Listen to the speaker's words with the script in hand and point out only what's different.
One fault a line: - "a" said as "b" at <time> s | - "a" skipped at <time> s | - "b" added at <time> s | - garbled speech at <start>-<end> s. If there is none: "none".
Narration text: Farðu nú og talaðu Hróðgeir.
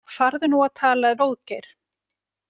none